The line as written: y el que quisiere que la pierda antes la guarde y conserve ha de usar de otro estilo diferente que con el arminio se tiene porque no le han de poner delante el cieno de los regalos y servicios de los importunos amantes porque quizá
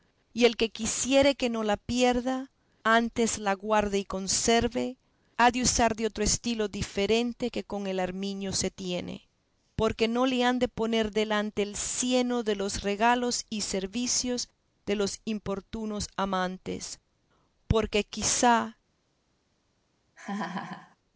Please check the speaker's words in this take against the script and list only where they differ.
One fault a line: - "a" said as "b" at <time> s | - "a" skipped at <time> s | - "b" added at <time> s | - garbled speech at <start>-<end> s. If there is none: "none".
- "no" added at 1.5 s